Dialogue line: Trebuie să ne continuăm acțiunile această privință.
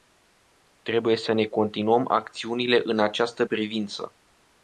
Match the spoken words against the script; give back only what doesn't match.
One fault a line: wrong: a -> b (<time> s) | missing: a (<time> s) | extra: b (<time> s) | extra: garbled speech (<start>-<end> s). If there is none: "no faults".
extra: în (2.8 s)